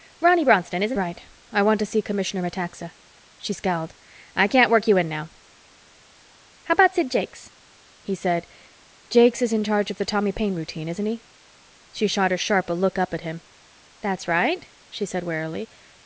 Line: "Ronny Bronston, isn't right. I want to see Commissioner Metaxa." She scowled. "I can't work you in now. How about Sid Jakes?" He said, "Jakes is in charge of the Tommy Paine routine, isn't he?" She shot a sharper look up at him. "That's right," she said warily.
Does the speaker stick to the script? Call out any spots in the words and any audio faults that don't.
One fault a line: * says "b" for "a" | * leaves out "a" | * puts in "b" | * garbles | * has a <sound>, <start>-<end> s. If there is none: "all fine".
all fine